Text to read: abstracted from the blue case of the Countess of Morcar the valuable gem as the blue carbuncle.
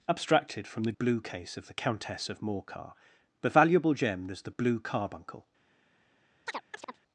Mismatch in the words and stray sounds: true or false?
true